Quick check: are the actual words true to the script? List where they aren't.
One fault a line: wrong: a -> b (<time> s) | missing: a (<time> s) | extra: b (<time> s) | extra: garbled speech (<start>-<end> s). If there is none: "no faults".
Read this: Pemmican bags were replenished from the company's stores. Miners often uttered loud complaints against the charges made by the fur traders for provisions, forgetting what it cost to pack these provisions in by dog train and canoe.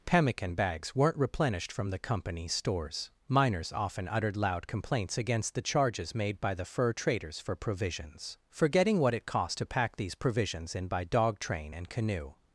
wrong: were -> weren't (0.9 s)